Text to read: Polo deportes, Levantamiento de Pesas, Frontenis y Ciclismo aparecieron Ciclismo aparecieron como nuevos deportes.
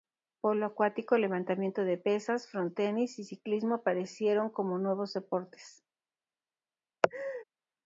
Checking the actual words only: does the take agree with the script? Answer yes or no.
no